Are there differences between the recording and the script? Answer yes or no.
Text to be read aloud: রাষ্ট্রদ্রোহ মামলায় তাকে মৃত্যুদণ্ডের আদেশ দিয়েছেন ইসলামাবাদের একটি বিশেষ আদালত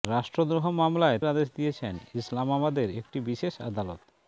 yes